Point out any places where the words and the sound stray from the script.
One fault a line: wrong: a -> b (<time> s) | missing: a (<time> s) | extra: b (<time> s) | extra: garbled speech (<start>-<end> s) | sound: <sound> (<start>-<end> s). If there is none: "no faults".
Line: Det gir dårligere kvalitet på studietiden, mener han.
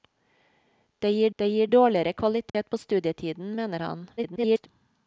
extra: det gir (1.4 s)
sound: dropout (2.5-2.5 s)
extra: garbled speech (4.2-4.7 s)